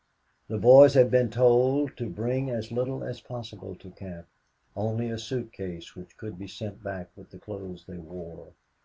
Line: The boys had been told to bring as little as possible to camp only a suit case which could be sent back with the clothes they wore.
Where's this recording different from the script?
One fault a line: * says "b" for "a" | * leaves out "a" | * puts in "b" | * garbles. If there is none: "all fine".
all fine